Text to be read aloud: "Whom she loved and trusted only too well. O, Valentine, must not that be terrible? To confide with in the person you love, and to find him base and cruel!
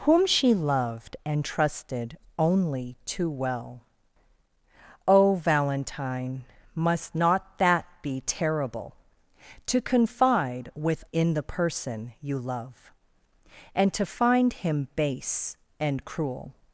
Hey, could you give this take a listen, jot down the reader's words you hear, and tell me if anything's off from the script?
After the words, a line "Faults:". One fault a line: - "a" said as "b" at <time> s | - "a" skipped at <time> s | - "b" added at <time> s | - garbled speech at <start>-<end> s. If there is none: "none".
"Whom she loved and trusted only too well. O, Valentine, must not that be terrible? To confide with in the person you love, and to find him base and cruel!
Faults:
none